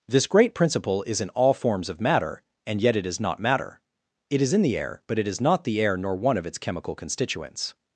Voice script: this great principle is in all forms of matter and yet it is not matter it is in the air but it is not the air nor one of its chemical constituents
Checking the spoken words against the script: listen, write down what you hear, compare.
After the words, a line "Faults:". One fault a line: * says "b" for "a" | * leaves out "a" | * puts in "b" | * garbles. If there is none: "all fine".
this great principle is in all forms of matter and yet it is not matter it is in the air but it is not the air nor one of its chemical constituents
Faults:
all fine